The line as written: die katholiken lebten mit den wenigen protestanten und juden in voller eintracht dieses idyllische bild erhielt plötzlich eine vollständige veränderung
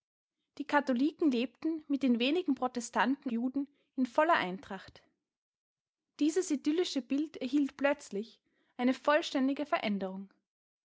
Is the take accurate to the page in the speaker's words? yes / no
no